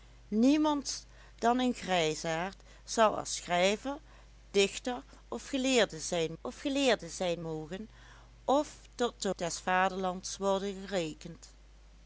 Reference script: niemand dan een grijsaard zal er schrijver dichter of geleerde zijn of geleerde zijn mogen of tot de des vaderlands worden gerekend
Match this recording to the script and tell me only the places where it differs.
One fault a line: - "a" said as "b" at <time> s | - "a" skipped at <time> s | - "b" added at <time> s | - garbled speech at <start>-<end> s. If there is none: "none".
none